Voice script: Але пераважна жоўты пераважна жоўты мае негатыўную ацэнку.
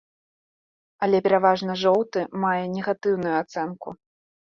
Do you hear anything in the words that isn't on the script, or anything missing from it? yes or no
yes